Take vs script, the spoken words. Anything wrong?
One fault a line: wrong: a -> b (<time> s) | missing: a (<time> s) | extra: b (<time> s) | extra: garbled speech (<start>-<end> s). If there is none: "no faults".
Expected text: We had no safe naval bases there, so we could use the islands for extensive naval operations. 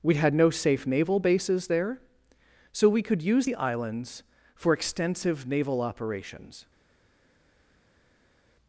no faults